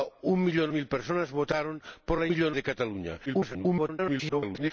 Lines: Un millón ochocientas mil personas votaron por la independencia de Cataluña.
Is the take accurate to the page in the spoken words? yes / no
no